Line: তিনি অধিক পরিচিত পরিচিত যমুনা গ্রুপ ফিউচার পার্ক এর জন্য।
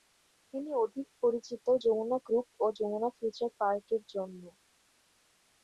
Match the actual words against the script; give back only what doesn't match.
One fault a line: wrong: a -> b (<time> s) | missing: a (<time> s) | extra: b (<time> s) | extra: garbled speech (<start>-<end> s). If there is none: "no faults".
missing: পরিচিত (1.6 s)
extra: ও যমুনা (2.6 s)